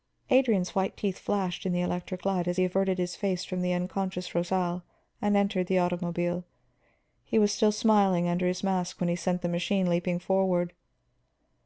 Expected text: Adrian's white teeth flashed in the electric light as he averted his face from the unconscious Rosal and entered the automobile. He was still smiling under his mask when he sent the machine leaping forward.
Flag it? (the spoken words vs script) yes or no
no